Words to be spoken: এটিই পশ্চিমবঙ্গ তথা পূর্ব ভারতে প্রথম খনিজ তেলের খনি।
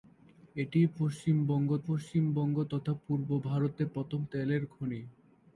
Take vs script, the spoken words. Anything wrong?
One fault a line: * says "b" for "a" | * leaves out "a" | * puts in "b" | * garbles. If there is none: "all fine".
* puts in "পশ্চিমবঙ্গ"
* leaves out "খনিজ"